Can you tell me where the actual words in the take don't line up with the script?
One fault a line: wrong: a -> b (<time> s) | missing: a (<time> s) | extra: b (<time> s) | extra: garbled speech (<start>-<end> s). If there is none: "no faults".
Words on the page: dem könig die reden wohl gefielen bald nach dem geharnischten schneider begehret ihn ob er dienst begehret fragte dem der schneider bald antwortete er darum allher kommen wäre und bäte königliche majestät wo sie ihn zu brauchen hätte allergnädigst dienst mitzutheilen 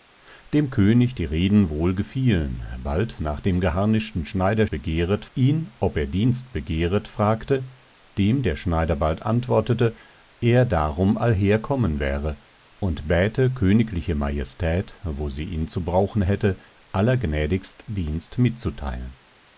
no faults